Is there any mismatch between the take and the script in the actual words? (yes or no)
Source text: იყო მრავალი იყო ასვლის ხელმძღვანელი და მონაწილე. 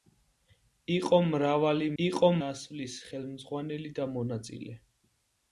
no